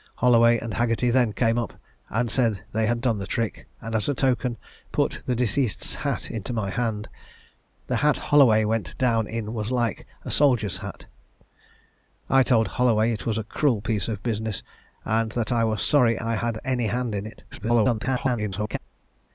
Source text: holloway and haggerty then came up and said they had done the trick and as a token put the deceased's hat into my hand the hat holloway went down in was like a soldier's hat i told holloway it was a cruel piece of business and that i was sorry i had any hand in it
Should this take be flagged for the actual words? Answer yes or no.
yes